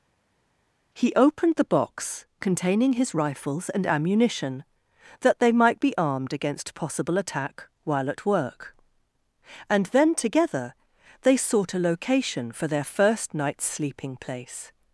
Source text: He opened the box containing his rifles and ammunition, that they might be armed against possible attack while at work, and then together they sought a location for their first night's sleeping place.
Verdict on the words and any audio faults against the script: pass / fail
pass